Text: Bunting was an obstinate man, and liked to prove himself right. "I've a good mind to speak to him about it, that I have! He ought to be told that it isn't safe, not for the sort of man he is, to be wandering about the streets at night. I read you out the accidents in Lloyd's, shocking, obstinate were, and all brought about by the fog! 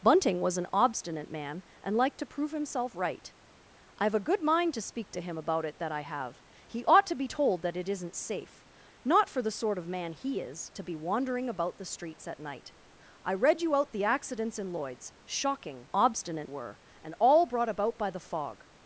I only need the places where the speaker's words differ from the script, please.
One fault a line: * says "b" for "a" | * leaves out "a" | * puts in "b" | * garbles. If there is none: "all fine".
all fine